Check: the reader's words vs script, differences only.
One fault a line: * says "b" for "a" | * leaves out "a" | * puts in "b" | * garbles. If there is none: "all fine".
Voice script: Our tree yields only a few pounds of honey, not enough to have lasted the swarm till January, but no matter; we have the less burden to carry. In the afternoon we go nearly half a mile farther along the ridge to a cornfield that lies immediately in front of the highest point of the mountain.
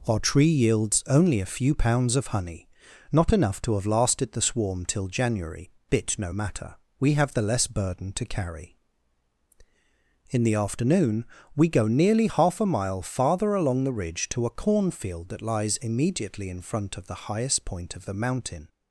* says "bit" for "but"